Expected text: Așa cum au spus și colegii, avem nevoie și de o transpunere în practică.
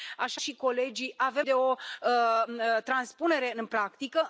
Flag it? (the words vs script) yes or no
yes